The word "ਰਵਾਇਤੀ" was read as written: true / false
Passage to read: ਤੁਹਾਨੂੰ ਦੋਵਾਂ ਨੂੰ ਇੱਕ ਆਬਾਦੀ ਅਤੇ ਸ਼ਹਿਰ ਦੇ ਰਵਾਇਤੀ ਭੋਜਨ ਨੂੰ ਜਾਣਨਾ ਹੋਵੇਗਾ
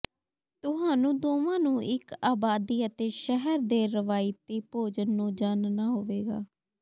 true